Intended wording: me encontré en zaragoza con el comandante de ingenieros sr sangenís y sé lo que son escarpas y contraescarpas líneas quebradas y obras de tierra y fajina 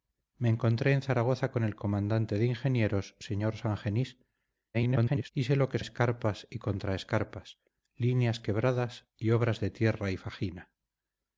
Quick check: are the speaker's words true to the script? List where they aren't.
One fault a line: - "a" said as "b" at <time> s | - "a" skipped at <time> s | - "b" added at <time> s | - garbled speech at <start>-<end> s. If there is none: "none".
- garbled speech at 4.7-5.3 s
- "son" skipped at 5.8 s